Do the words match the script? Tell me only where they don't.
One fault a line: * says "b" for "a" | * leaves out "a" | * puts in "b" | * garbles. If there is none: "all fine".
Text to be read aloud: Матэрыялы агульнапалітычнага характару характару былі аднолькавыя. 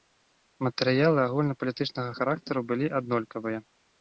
* leaves out "характару"